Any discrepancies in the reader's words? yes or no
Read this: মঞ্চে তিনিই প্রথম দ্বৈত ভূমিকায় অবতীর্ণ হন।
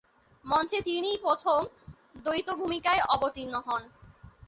no